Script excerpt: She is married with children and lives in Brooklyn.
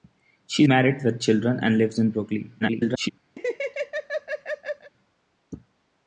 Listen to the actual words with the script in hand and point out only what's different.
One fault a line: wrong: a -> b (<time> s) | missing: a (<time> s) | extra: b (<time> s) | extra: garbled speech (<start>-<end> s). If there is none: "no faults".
missing: is (0.6 s)
extra: garbled speech (2.6-3.1 s)